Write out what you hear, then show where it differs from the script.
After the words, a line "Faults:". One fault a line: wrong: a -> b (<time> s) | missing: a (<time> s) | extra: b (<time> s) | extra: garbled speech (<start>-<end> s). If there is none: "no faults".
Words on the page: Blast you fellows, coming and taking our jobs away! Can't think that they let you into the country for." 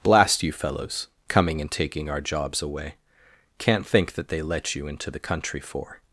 Blast you fellows, coming and taking our jobs away! Can't think that they let you into the country for."
Faults:
no faults